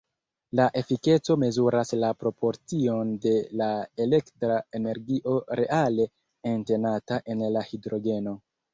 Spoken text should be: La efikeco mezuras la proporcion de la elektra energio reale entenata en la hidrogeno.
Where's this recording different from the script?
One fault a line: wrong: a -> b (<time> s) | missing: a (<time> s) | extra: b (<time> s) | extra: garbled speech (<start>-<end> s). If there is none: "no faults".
no faults